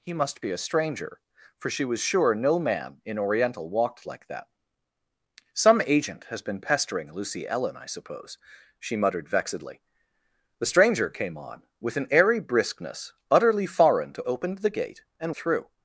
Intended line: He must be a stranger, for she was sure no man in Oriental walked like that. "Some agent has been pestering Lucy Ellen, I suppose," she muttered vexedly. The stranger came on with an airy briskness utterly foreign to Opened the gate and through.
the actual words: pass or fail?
pass